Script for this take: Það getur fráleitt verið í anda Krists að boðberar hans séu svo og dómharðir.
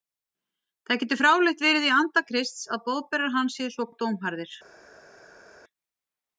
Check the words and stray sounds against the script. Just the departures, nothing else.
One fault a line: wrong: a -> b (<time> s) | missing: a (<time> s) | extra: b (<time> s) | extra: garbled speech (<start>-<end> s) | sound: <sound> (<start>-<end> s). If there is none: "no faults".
no faults